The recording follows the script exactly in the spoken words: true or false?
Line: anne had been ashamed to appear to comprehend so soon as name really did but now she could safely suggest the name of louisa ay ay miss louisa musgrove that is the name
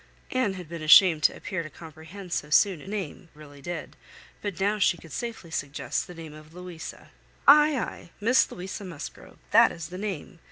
true